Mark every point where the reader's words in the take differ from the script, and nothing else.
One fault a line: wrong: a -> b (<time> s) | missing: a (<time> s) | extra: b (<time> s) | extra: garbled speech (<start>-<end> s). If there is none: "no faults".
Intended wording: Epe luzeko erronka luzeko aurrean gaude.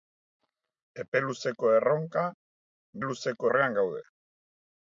no faults